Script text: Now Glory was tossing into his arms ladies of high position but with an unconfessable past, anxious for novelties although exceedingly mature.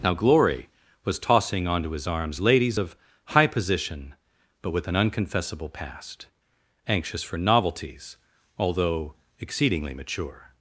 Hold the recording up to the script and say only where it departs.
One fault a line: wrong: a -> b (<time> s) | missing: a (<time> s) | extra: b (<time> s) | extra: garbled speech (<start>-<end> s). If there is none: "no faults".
wrong: into -> onto (1.7 s)